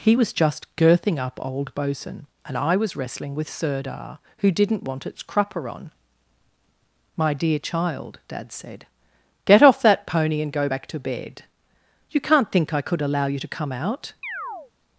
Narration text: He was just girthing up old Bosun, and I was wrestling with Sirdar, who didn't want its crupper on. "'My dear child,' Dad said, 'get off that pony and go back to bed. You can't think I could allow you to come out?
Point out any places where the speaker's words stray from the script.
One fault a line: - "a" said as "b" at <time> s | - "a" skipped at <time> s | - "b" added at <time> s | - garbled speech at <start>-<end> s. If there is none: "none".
none